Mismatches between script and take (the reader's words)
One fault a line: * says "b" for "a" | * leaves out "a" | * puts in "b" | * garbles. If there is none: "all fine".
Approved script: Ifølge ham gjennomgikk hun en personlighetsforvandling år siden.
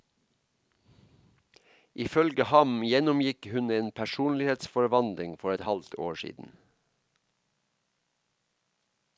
* puts in "for et halvt"